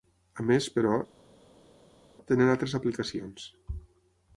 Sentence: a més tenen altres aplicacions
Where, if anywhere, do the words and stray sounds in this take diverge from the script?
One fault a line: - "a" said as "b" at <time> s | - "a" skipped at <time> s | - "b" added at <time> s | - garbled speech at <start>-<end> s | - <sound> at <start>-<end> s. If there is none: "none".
- "però" added at 0.8 s